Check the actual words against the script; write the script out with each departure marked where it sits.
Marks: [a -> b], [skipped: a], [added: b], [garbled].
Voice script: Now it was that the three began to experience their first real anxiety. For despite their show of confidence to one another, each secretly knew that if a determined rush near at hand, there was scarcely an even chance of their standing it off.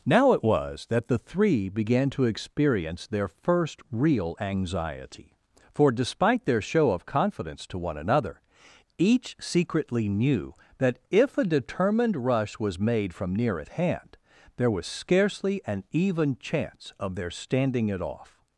Now it was that the three began to experience their first real anxiety. For despite their show of confidence to one another, each secretly knew that if a determined rush [added: was made from] near at hand, there was scarcely an even chance of their standing it off.